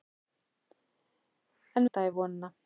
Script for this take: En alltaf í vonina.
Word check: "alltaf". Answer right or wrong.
right